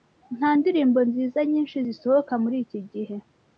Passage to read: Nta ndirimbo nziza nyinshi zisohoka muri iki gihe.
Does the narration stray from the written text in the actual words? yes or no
no